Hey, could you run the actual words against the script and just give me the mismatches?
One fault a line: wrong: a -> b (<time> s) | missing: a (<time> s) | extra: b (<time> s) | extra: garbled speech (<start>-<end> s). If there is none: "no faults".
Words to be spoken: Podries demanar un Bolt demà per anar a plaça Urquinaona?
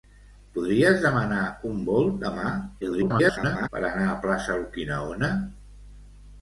extra: garbled speech (2.8-3.7 s)